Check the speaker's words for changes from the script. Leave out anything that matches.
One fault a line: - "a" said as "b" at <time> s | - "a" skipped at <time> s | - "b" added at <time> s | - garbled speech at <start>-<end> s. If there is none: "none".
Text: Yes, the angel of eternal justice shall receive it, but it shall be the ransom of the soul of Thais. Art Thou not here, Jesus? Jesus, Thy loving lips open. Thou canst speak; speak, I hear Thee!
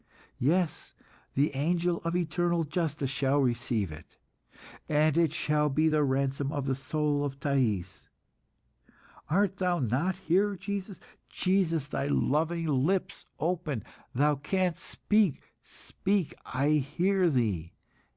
- "but" said as "and" at 4.9 s